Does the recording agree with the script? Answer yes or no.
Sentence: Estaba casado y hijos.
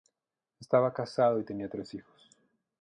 no